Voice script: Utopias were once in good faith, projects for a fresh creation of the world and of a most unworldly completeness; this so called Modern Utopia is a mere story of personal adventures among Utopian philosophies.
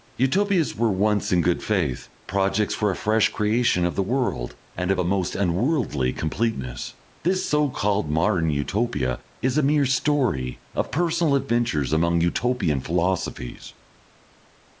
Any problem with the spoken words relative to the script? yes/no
no